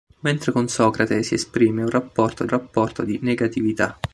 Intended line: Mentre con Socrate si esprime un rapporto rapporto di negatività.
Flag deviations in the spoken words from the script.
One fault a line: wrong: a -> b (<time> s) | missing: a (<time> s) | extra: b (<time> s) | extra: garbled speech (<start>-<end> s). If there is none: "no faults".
no faults